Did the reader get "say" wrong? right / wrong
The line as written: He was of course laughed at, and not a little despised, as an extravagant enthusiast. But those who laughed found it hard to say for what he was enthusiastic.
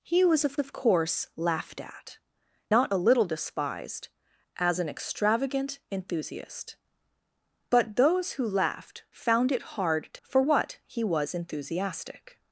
wrong